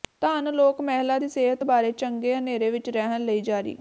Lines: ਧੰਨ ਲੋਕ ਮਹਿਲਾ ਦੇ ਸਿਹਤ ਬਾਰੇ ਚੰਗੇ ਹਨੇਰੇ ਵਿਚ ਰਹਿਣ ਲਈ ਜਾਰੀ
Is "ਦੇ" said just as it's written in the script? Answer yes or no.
no